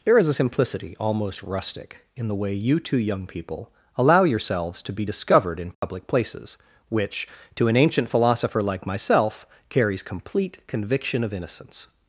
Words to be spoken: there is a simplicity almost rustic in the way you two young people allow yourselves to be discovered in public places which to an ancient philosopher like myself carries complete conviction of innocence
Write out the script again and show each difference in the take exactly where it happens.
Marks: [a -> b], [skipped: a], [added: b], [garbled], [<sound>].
there is a simplicity almost rustic in the way you two young people allow yourselves to be discovered in public [dropout] places which to an ancient philosopher like myself carries complete conviction of innocence